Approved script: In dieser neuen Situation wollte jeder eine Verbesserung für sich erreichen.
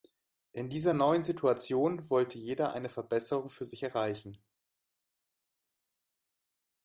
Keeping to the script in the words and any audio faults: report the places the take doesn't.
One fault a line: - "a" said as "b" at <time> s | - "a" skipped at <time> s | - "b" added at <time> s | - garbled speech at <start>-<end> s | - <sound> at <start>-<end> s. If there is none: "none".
none